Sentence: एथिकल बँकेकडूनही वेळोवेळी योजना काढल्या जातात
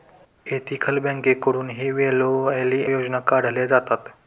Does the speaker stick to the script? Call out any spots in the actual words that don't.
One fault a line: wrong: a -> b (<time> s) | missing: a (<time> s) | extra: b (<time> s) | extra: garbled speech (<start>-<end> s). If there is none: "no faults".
no faults